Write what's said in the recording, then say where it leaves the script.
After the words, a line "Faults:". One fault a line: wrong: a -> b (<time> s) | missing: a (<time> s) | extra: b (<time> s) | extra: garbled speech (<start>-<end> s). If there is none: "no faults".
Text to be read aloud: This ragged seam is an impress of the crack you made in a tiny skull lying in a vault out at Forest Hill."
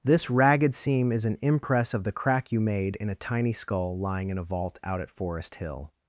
This ragged seam is an impress of the crack you made in a tiny skull lying in a vault out at Forest Hill."
Faults:
no faults